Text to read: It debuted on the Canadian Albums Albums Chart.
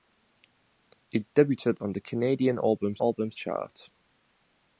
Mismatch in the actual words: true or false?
false